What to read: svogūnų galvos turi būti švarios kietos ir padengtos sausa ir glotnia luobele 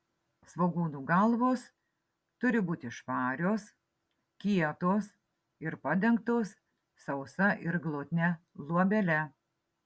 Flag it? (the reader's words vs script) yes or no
no